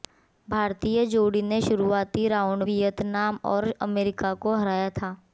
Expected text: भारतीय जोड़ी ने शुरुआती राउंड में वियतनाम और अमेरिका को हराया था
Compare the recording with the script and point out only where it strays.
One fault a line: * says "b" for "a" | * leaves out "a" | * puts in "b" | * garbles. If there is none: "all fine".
* leaves out "में"